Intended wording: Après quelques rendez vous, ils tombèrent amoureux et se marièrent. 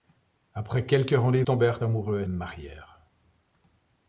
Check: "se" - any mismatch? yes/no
yes